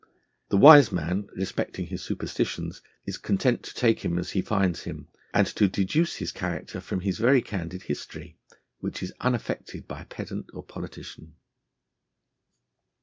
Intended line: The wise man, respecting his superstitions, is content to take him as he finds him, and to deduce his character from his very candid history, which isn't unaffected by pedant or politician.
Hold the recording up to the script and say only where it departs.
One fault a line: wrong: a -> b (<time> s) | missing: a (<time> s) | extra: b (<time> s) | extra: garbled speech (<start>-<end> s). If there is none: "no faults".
wrong: isn't -> is (9.0 s)